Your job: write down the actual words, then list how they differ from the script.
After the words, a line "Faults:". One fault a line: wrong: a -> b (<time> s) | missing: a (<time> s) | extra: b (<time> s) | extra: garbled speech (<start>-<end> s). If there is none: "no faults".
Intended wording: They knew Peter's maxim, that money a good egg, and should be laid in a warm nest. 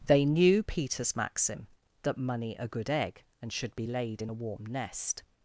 They knew Peter's maxim, that money a good egg, and should be laid in a warm nest.
Faults:
no faults